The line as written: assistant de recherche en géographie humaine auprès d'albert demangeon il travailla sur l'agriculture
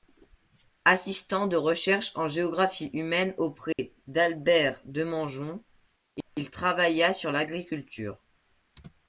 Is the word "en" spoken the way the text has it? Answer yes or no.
yes